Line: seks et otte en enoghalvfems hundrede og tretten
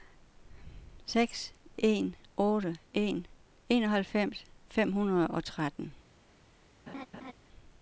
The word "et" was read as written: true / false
false